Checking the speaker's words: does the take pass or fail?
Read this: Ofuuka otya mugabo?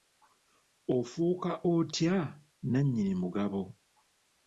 fail